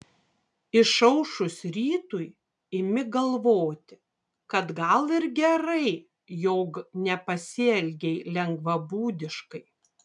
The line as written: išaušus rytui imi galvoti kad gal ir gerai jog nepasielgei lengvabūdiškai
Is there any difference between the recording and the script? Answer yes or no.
no